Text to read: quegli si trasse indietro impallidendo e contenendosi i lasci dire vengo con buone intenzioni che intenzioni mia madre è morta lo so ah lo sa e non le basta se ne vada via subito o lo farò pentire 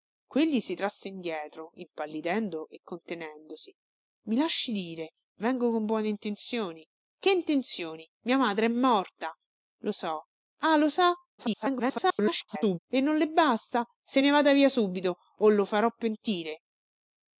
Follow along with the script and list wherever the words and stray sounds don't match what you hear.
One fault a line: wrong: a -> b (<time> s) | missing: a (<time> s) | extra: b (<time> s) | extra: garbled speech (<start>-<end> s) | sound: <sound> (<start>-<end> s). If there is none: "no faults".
extra: garbled speech (11.4-12.8 s)